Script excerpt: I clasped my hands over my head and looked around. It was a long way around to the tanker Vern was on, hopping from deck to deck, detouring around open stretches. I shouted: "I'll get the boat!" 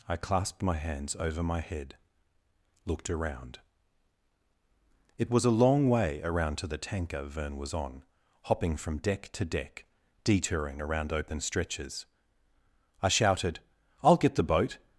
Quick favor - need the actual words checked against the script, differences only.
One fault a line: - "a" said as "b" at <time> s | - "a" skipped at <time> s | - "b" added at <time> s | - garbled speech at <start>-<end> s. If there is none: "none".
- "and" skipped at 2.0 s